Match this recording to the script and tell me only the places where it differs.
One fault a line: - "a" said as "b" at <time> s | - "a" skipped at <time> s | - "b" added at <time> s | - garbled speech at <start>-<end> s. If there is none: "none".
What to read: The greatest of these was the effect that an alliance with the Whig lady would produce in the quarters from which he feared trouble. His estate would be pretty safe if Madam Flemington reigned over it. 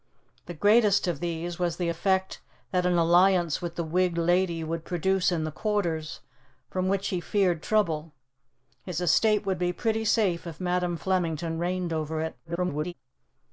- garbled speech at 12.4-12.9 s